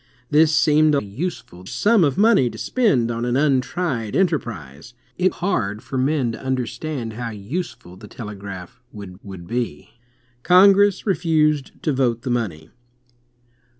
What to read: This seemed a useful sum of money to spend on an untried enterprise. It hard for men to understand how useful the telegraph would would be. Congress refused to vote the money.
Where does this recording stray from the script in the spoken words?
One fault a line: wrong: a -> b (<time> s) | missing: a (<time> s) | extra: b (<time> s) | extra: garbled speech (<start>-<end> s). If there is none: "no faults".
no faults